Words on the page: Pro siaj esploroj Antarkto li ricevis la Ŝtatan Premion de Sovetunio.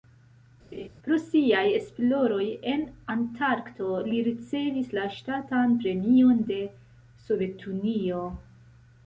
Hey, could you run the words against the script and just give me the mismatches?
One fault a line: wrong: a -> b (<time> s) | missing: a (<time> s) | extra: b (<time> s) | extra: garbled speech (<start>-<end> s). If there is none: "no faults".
extra: en (2.7 s)